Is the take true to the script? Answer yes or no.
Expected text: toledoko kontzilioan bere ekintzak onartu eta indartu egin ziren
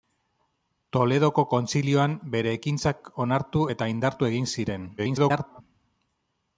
no